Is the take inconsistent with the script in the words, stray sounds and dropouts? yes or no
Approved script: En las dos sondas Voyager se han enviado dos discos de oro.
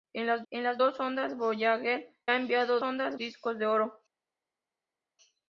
yes